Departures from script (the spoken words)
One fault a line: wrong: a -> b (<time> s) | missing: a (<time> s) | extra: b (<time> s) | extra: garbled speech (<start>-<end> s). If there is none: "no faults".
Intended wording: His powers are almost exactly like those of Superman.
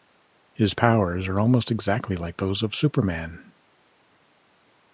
no faults